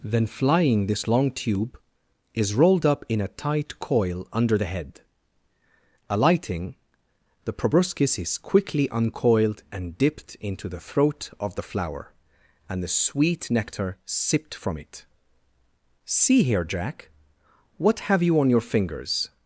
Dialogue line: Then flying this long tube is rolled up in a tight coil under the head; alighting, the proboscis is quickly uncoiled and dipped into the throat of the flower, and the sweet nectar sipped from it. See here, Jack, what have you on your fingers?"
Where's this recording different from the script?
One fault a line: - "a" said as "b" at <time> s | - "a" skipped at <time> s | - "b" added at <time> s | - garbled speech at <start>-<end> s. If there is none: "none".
none